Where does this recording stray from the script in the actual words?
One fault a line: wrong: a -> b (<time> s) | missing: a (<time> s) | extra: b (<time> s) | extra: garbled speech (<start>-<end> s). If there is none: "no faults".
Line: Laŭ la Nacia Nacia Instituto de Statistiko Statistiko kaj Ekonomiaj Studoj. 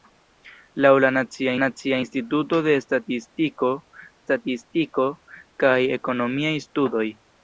no faults